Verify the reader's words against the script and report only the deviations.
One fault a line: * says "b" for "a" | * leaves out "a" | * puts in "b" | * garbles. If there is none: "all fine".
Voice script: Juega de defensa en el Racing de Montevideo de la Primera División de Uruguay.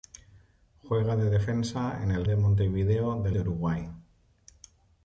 * leaves out "Racing"
* leaves out "la Primera División"